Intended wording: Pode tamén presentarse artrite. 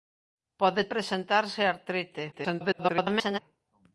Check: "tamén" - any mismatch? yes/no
yes